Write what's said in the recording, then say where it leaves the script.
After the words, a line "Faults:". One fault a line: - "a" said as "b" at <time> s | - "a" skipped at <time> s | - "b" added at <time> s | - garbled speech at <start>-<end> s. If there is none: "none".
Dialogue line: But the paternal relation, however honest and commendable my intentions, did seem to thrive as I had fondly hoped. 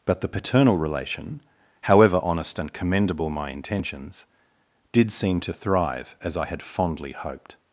But the paternal relation, however honest and commendable my intentions, did seem to thrive as I had fondly hoped.
Faults:
none